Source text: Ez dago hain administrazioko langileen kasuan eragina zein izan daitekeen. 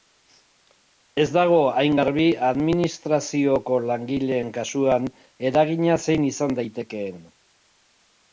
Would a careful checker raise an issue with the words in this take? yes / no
yes